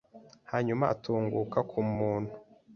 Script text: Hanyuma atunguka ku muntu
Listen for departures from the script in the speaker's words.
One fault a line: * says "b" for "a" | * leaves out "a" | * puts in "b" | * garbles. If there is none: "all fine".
all fine